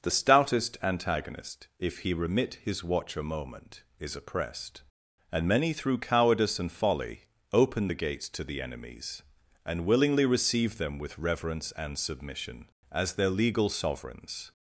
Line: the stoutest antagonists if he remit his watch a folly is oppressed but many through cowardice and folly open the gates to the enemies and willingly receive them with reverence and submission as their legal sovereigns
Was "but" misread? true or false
true